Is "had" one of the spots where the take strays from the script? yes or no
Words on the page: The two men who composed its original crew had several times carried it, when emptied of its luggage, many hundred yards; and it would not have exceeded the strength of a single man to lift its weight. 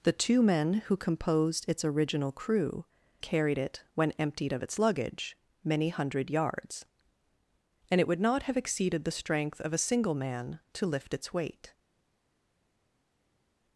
yes